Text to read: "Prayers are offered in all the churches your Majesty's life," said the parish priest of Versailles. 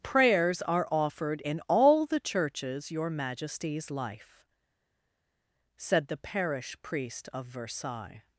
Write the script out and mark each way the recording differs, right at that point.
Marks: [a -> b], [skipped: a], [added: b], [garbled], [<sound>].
"Prayers are offered in all the churches your Majesty's life," said the parish priest of Versailles.